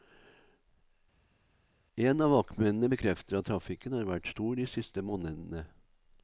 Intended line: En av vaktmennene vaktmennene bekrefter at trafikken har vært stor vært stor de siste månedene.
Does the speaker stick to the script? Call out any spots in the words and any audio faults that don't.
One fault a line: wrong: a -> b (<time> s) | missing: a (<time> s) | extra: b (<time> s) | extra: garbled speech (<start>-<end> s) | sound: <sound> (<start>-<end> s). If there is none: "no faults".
missing: vaktmennene (2.9 s)
missing: vært stor (4.6 s)